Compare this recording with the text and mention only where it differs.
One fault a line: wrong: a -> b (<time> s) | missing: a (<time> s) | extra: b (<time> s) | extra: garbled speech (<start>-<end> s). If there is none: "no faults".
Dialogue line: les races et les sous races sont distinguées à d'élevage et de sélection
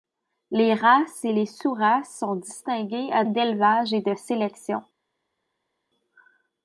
no faults